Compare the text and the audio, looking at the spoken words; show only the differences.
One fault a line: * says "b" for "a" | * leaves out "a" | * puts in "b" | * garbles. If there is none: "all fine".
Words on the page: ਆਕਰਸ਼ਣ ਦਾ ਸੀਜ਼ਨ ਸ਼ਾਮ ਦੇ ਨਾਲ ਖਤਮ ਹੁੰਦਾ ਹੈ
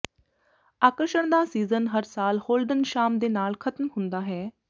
* puts in "ਹਰ ਸਾਲ ਹੋਲਡਨ"